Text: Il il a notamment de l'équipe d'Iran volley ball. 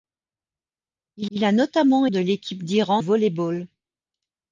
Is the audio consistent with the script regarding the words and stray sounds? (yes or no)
yes